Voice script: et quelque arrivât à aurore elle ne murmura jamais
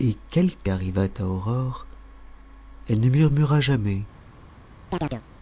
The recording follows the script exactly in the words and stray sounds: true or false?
false